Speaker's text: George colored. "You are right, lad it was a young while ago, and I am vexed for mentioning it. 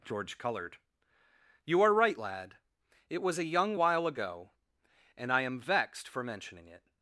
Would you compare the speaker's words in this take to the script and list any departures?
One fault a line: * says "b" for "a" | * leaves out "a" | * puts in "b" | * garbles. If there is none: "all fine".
all fine